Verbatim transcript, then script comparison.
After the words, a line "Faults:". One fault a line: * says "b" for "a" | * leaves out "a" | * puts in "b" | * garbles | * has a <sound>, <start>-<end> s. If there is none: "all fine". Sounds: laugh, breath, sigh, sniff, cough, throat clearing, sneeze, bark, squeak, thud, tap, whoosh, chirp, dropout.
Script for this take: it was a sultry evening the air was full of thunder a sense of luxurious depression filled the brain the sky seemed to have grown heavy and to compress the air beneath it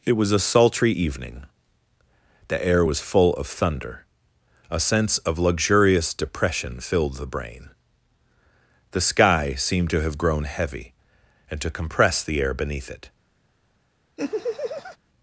it was a sultry evening the air was full of thunder a sense of luxurious depression filled the brain the sky seemed to have grown heavy and to compress the air beneath it
Faults:
* has a laugh, 14.2-15.0 s